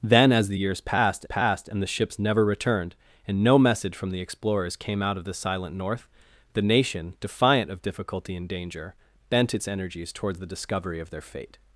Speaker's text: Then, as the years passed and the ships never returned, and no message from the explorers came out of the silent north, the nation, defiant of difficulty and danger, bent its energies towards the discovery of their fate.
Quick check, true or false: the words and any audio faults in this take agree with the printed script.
false